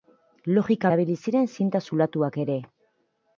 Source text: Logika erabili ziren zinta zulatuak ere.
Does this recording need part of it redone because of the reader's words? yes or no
no